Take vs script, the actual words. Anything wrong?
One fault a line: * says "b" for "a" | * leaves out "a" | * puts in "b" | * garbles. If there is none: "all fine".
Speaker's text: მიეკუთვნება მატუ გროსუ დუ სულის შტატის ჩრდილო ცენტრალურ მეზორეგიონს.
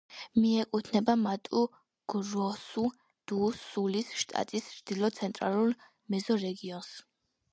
all fine